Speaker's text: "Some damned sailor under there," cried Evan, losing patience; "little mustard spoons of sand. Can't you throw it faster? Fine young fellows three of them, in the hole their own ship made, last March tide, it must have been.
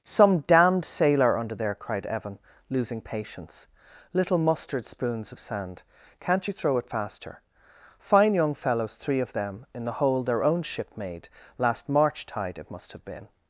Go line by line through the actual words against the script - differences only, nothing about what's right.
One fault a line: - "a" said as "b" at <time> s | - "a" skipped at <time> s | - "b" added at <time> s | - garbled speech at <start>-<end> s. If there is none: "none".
none